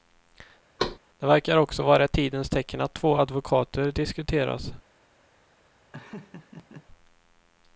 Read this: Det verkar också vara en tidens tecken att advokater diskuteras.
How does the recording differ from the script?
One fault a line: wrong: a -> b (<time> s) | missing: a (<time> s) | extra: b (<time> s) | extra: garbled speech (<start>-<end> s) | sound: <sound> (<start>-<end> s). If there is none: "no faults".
sound: thud (0.8-1.0 s)
wrong: en -> ett (2.0 s)
extra: två (2.9 s)
sound: laugh (5.9-6.9 s)